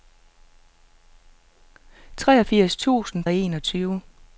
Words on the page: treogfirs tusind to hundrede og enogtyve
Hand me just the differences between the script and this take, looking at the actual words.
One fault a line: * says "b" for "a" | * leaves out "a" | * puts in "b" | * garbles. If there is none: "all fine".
* leaves out "to hundrede"